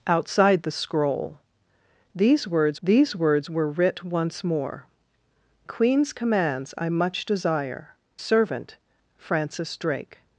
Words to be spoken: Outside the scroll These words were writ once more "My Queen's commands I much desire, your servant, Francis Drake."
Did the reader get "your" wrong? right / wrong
wrong